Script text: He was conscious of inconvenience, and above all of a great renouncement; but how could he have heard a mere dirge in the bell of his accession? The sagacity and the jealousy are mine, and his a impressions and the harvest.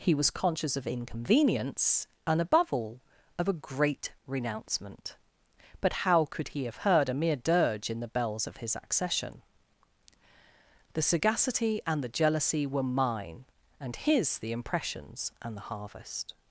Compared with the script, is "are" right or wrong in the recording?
wrong